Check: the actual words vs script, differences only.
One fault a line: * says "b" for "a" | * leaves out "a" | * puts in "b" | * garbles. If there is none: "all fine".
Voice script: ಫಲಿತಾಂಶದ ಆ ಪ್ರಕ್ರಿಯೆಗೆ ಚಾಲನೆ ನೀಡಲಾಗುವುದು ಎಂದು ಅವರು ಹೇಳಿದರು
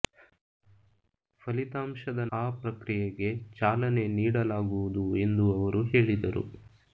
all fine